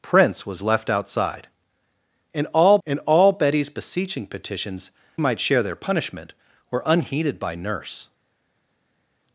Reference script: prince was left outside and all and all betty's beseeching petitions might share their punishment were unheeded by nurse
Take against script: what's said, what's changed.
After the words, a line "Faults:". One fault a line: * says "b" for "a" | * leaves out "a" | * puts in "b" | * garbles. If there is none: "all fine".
prince was left outside and all and all betty's beseeching petitions might share their punishment were unheeded by nurse
Faults:
all fine